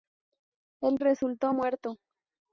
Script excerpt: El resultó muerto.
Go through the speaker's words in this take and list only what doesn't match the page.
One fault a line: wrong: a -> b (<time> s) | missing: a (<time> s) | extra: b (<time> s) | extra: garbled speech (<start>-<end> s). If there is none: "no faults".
no faults